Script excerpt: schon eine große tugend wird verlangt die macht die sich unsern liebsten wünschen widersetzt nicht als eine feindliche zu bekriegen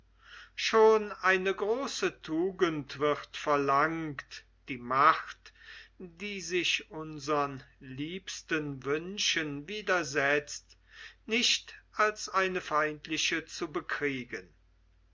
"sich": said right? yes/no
yes